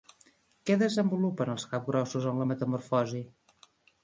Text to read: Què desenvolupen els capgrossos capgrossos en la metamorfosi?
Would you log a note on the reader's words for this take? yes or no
yes